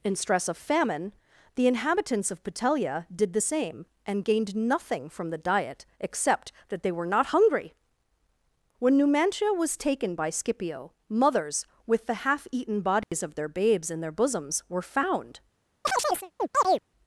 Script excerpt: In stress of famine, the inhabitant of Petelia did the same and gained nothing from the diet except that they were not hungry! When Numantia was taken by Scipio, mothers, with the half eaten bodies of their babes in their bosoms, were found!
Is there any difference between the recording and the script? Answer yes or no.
yes